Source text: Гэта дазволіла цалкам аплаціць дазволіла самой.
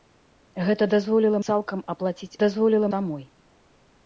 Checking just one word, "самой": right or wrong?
right